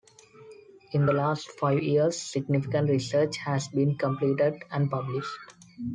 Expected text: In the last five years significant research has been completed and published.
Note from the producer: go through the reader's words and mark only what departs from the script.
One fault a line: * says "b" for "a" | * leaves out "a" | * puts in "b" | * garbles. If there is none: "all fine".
all fine